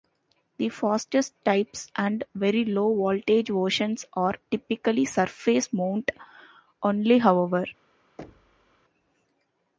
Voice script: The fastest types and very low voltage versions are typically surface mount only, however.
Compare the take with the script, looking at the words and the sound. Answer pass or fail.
fail